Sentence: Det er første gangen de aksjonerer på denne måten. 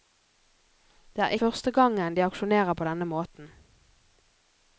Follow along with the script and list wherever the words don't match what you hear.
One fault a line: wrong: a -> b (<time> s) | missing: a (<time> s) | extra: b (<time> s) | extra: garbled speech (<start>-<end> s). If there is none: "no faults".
no faults